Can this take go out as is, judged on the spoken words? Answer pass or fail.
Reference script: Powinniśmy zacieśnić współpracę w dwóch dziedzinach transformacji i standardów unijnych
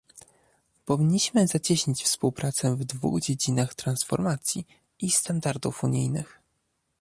pass